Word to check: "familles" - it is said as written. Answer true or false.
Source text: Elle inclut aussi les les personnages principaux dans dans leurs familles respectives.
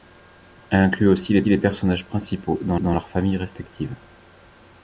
true